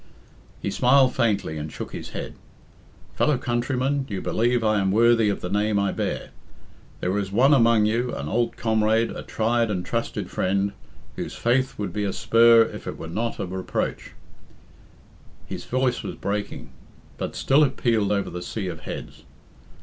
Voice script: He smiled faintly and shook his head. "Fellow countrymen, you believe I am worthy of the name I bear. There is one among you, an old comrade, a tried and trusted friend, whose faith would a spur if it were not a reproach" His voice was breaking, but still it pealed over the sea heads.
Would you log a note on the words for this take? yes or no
yes